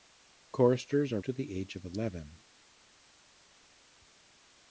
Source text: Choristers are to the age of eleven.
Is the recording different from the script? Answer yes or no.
no